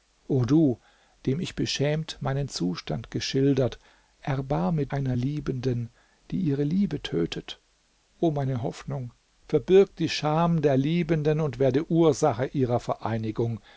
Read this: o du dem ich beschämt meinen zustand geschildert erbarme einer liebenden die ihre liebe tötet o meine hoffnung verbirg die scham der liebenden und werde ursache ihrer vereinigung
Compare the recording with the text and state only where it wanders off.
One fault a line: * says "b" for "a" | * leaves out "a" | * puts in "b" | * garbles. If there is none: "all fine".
all fine